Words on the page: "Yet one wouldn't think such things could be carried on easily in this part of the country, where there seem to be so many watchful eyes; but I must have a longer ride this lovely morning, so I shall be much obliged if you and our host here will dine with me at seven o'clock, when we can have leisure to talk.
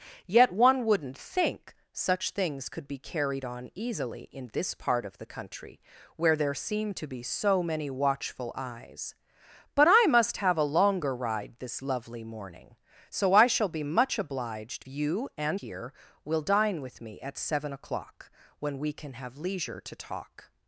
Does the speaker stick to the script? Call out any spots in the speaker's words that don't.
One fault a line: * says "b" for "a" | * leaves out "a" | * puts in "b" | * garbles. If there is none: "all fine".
* leaves out "if"
* leaves out "our host"